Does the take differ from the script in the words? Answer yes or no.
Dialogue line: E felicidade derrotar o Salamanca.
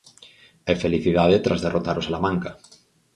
yes